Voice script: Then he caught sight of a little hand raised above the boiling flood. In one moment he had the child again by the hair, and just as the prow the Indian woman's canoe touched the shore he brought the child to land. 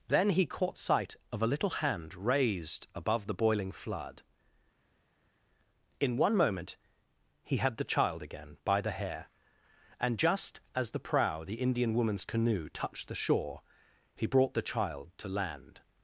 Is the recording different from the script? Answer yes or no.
no